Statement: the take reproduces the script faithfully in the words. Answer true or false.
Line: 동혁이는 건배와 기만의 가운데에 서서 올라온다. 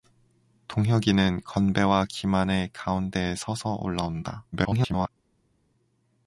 false